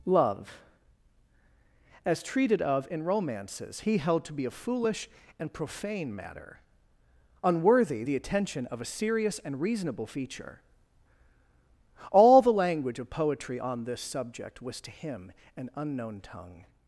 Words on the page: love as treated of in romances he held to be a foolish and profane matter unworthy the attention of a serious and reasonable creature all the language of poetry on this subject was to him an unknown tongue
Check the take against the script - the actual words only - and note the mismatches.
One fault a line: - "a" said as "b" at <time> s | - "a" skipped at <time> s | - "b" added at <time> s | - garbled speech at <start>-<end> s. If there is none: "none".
- "creature" said as "feature" at 10.1 s